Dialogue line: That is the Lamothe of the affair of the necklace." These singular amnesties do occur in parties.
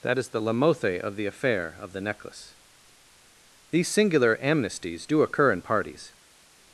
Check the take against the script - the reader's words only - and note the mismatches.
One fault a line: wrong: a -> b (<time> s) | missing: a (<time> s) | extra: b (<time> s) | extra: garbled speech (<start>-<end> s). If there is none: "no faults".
no faults